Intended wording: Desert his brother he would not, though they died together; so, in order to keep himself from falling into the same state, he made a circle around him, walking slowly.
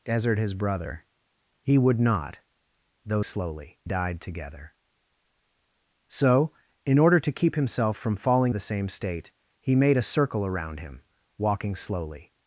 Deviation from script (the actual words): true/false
true